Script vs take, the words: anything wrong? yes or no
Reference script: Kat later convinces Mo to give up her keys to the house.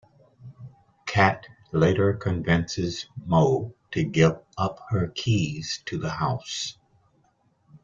no